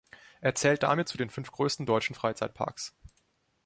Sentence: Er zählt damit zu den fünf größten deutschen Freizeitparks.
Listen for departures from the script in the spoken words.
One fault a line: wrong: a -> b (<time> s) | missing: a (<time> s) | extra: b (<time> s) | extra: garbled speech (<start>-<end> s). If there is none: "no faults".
no faults